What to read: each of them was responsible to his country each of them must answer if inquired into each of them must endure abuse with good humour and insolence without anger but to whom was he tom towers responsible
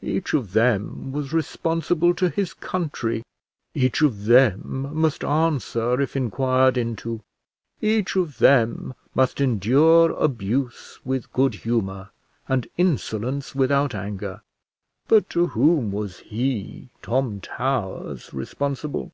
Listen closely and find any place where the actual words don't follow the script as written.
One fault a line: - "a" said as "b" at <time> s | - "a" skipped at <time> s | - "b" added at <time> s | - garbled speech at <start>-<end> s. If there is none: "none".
none